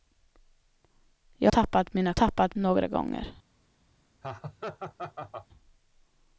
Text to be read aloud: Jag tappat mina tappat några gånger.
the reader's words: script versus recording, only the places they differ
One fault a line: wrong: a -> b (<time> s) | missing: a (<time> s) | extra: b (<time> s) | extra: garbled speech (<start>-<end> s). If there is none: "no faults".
no faults